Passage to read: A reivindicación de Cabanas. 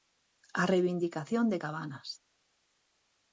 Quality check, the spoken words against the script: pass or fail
pass